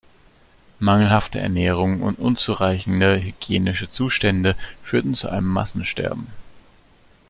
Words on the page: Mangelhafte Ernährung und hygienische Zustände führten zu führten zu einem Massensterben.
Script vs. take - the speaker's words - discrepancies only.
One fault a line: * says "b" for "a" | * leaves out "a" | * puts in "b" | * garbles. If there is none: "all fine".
* puts in "unzureichende"
* leaves out "führten zu"